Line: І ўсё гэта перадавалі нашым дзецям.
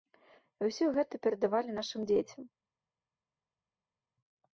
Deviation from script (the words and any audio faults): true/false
false